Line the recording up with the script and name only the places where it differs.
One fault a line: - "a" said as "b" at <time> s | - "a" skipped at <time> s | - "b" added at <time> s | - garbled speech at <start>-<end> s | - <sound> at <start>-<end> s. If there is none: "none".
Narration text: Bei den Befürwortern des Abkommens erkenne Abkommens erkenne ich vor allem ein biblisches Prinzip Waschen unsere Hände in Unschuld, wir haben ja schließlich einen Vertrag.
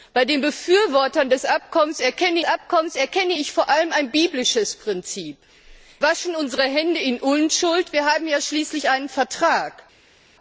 none